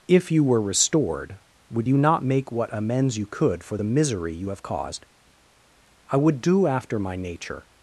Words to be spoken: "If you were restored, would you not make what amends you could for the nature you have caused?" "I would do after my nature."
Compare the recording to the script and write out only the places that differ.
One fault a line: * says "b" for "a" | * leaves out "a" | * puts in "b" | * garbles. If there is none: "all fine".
* says "misery" for "nature"